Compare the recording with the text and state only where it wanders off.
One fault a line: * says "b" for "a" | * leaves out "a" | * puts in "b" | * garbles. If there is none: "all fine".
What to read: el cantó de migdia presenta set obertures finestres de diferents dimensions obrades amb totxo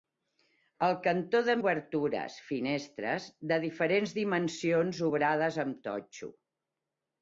* leaves out "migdia presenta set"